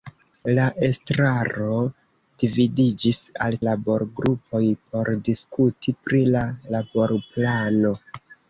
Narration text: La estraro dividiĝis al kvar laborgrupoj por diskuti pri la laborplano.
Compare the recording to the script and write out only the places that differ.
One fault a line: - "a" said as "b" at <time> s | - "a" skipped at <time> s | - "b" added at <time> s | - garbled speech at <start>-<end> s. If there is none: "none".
- "kvar" skipped at 3.6 s